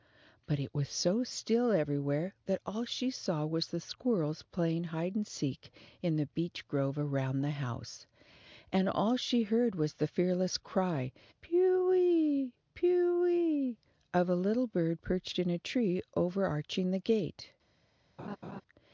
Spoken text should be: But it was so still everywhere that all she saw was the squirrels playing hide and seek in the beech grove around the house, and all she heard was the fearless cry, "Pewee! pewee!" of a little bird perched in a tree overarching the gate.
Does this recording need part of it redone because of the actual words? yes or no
no